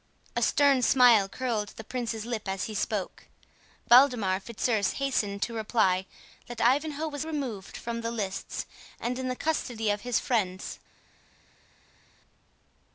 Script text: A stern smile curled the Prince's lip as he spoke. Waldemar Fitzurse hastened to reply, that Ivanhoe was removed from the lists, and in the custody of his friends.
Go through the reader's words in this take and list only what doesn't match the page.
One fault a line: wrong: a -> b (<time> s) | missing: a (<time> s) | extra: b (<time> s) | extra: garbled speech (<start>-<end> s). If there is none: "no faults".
no faults